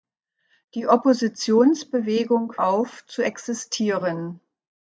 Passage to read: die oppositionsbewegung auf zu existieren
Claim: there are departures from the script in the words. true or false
false